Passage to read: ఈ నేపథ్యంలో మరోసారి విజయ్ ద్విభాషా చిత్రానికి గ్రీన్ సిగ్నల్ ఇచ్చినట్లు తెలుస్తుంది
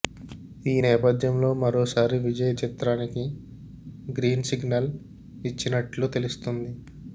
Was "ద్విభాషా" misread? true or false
true